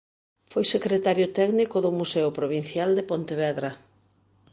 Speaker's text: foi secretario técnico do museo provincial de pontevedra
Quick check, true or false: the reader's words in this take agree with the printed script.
true